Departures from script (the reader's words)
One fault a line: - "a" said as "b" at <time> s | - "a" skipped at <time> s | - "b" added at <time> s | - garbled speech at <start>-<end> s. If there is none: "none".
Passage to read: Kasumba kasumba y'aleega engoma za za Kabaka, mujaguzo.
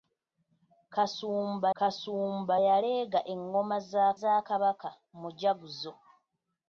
none